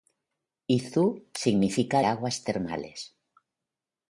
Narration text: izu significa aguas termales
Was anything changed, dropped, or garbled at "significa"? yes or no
no